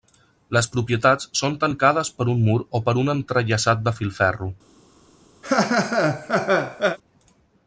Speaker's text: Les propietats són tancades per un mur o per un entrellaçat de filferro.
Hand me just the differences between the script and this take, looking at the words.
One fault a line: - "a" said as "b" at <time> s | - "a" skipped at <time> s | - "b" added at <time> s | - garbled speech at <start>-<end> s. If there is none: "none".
none